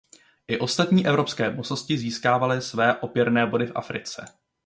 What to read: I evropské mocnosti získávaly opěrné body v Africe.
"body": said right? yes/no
yes